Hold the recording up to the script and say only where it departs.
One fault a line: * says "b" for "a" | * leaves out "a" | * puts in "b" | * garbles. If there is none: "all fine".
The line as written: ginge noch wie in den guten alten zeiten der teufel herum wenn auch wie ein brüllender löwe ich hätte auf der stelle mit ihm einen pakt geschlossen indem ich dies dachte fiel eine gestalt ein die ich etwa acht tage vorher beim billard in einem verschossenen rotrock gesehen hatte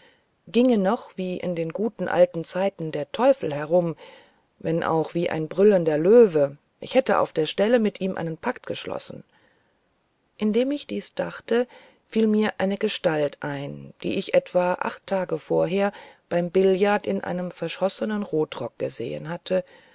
* puts in "mir"